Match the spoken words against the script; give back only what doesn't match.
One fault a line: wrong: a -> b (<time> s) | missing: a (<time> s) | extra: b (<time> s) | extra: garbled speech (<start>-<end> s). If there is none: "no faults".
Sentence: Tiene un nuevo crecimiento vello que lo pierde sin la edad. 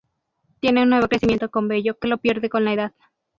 extra: con (1.5 s)
wrong: sin -> con (2.5 s)